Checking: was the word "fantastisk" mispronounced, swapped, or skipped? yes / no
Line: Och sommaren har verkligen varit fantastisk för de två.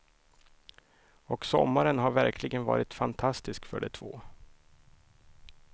no